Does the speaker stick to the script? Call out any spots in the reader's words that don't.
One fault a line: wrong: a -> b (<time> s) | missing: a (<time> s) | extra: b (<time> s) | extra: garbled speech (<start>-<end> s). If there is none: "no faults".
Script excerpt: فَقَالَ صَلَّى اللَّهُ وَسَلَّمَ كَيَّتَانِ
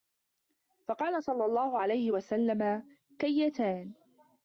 extra: عَلَيْهِ (1.8 s)